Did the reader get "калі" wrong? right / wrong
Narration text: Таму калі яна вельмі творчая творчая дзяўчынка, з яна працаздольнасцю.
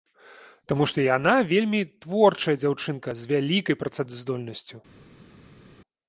wrong